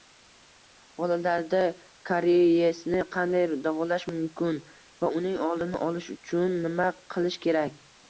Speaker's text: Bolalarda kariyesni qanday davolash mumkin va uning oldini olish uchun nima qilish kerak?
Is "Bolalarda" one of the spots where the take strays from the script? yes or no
no